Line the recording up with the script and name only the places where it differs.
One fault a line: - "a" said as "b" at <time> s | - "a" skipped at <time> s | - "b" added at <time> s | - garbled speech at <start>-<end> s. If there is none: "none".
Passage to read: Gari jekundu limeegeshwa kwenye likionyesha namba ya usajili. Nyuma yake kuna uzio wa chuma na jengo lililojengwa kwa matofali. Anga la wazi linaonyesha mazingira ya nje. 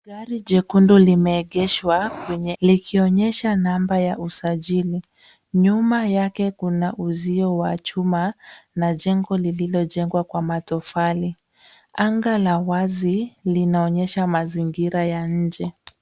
none